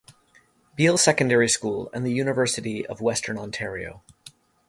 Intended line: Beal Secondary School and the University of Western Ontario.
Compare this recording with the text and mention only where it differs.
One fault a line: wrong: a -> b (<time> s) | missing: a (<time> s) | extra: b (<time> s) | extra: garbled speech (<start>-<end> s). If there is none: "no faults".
no faults